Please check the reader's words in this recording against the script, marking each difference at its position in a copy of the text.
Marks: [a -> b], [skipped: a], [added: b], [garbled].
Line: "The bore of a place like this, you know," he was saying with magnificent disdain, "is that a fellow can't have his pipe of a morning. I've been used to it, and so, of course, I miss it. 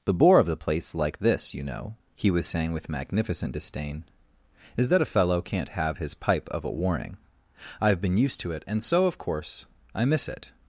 "The bore of [a -> the] place like this, you know," he was saying with magnificent disdain, "is that a fellow can't have his pipe of a [morning. -> warning] I've been used to it, and so, of course, I miss it.